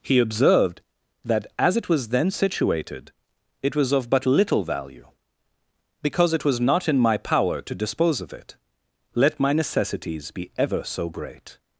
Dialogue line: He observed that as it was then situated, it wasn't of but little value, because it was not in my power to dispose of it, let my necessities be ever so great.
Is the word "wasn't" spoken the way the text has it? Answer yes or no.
no